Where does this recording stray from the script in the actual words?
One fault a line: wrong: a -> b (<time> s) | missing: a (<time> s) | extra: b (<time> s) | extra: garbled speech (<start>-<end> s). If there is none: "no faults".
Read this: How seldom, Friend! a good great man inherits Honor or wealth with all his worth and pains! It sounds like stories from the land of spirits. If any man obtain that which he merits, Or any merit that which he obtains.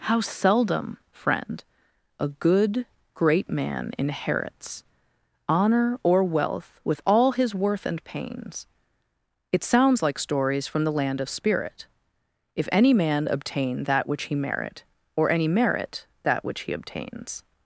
wrong: spirits -> spirit (11.3 s)
wrong: merits -> merit (14.3 s)